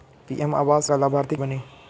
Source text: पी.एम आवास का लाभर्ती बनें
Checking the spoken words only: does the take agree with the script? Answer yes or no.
yes